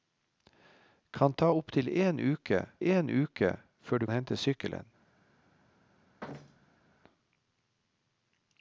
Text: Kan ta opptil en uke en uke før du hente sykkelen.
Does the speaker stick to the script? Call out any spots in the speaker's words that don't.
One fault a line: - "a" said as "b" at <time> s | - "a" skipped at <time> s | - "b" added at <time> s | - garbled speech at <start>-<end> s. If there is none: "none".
none